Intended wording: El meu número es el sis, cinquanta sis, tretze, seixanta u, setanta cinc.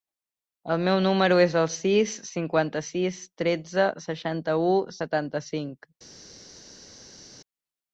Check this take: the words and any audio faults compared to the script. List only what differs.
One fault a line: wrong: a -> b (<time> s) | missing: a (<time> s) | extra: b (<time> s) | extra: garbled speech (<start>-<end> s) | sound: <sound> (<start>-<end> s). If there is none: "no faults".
no faults